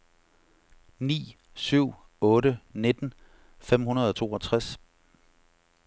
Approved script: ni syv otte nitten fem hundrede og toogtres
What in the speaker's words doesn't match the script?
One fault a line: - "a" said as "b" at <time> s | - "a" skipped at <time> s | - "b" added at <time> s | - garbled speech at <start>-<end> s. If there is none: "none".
none